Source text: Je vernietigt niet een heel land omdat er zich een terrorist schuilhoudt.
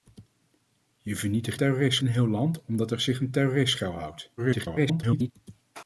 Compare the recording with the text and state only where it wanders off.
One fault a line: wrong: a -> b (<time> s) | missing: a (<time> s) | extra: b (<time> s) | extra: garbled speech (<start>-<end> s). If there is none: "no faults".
wrong: niet -> terrorist (1.5 s)
extra: garbled speech (4.4-5.3 s)